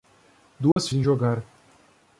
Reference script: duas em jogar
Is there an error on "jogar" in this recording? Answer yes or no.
no